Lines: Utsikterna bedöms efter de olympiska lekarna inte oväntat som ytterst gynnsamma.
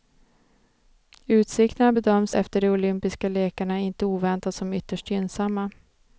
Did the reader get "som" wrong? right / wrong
right